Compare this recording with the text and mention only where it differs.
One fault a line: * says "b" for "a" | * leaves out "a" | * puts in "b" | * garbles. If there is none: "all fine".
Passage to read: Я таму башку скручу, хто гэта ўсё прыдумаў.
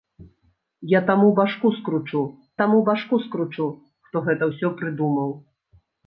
* puts in "таму башку скручу"